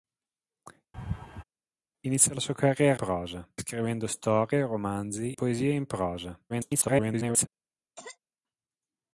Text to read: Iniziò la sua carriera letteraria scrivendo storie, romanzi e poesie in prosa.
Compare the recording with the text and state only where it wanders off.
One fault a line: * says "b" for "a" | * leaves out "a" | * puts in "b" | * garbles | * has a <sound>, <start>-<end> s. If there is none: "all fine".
* has a laugh, 0.9-1.4 s
* says "prosa" for "letteraria"
* leaves out "e"
* garbles
* has a cough, 8.0-8.2 s